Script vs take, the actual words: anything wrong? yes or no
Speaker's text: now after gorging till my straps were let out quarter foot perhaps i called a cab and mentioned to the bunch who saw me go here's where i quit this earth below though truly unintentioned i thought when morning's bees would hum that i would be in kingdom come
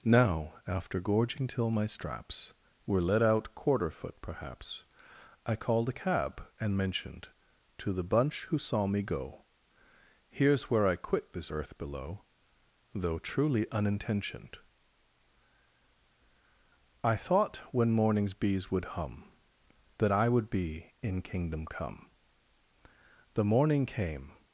yes